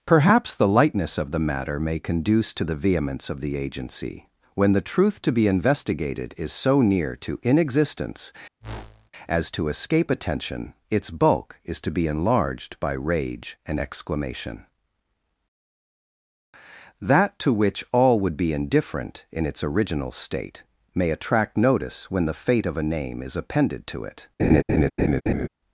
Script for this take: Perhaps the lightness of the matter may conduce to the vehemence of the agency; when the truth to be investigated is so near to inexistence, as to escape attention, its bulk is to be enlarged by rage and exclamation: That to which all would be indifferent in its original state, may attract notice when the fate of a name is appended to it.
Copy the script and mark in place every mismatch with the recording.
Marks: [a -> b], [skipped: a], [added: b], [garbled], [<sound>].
Perhaps the lightness of the matter may conduce to the vehemence of the agency; when the truth to be investigated is so near to inexistence, [whoosh] as to escape attention, its bulk is to be enlarged by rage and exclamation: That to which all would be indifferent in its original state, may attract notice when the fate of a name is appended to it. [laugh]